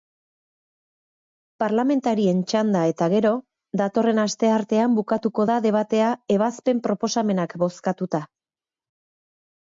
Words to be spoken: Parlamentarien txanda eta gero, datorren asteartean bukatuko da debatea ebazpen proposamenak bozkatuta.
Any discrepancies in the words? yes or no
no